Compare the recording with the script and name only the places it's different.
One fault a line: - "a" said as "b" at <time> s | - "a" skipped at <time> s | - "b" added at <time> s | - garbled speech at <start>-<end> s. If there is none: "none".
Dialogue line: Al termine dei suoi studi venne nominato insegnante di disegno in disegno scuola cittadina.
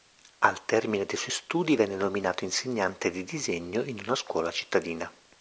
- "disegno" said as "una" at 4.0 s